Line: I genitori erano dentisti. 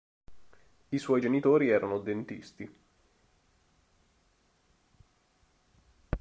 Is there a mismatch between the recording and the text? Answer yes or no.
yes